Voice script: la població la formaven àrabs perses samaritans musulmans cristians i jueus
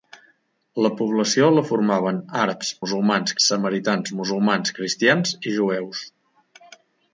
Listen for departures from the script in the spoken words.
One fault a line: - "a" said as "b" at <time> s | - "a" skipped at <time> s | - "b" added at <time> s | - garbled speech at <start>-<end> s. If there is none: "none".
- "perses" said as "musulmans" at 2.8 s